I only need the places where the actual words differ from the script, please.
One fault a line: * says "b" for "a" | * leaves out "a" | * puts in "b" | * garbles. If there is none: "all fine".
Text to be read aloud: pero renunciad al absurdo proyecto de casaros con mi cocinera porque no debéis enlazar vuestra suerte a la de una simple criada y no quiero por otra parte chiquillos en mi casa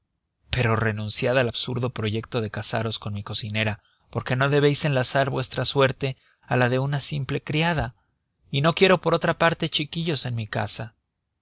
all fine